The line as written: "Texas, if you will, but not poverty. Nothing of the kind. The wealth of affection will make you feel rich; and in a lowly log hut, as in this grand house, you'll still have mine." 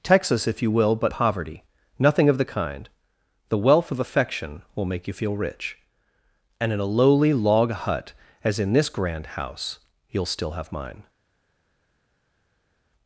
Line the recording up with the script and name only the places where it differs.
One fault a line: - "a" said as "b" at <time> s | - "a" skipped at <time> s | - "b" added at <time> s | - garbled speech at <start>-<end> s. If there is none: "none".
- "not" skipped at 1.1 s